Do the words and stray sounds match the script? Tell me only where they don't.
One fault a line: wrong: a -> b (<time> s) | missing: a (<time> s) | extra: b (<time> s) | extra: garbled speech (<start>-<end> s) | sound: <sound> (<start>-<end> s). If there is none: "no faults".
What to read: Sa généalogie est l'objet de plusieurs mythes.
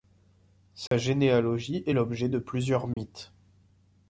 sound: dropout (0.9-0.9 s)
sound: dropout (2.9-3.0 s)